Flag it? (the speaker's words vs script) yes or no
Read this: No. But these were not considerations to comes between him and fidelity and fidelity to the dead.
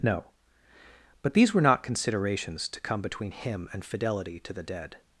yes